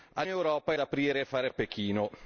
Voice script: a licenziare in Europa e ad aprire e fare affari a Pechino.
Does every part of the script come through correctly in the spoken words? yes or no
no